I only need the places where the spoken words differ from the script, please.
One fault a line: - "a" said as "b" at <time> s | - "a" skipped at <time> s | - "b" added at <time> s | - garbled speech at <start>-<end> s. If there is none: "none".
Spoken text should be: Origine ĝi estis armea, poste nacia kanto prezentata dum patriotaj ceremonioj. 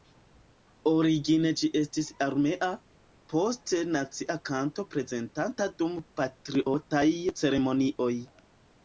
none